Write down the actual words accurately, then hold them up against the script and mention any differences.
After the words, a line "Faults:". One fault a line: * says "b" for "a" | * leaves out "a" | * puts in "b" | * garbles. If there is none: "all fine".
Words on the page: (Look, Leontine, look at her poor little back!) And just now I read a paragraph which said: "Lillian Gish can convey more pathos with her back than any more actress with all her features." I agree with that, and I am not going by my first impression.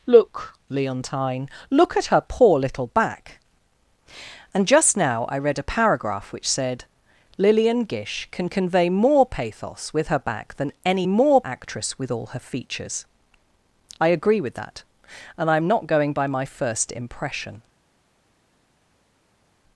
(Look, Leontine, look at her poor little back!) And just now I read a paragraph which said: "Lillian Gish can convey more pathos with her back than any more actress with all her features." I agree with that, and I am not going by my first impression.
Faults:
all fine